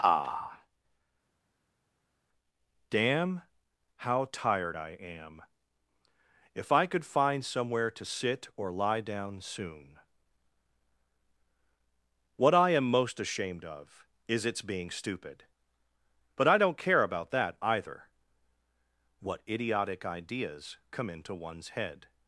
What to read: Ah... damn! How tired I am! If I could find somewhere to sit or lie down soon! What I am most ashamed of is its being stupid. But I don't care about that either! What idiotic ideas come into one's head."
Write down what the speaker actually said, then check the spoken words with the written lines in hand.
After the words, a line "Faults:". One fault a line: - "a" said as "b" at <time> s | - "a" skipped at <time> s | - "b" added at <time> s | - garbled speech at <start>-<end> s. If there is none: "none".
Ah... damn! How tired I am! If I could find somewhere to sit or lie down soon! What I am most ashamed of is its being stupid. But I don't care about that either! What idiotic ideas come into one's head."
Faults:
none